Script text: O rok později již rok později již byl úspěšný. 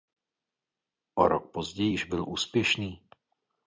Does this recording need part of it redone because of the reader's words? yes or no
yes